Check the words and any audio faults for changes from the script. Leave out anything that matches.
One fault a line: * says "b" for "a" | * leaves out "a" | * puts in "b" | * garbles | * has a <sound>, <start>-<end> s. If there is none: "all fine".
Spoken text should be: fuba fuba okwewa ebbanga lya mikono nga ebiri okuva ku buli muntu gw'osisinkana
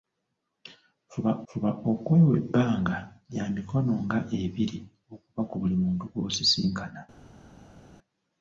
all fine